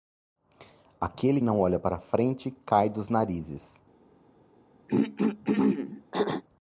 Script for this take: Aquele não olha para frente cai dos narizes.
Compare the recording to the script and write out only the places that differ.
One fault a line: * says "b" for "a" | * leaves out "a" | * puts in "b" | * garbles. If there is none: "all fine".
all fine